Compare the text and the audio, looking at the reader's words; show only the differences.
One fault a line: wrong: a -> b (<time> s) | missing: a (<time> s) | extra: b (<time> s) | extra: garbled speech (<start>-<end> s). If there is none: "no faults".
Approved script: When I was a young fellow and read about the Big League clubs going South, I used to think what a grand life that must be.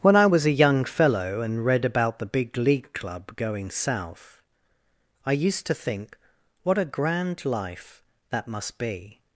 wrong: clubs -> club (2.9 s)